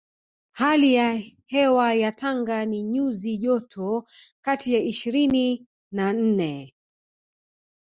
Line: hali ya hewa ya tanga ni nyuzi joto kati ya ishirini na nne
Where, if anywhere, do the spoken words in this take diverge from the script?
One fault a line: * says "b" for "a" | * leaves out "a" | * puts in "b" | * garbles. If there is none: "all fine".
all fine